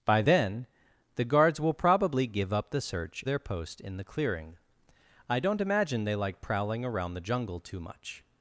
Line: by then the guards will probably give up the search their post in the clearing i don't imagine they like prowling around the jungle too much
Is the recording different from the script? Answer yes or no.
no